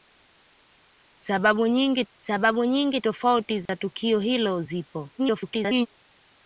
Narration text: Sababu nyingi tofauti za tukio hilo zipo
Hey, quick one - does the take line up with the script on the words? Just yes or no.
no